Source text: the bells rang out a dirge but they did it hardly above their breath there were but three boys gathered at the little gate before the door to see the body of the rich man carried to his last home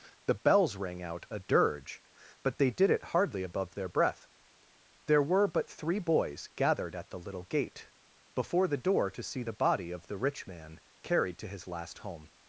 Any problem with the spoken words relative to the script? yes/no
no